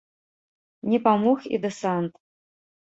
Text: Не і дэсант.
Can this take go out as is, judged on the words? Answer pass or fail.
fail